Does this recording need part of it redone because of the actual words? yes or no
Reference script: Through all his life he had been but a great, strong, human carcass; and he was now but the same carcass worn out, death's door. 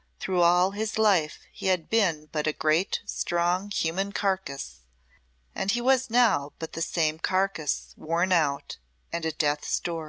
yes